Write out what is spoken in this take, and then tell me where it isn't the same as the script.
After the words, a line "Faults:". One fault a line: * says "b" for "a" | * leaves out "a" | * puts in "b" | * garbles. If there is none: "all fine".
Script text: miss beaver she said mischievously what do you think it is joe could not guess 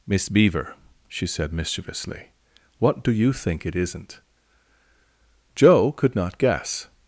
miss beaver she said mischievously what do you think it isn't joe could not guess
Faults:
* says "isn't" for "is"